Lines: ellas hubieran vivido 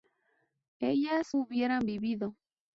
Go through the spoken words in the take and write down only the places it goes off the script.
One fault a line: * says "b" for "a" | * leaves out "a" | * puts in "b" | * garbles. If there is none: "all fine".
all fine